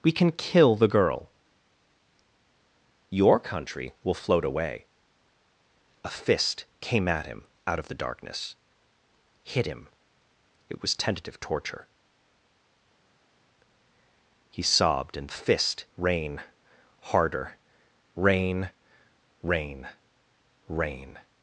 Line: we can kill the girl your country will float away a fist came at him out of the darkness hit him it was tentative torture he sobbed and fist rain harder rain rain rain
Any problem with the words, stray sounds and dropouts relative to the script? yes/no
no